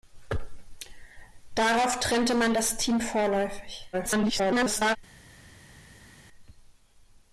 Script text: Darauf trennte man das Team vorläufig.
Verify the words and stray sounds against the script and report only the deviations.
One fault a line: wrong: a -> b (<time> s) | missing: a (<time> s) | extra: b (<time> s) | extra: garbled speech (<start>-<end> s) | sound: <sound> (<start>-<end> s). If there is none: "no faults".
extra: garbled speech (3.9-5.0 s)